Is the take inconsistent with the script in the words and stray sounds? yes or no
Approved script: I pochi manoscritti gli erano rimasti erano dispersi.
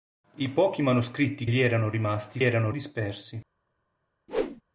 yes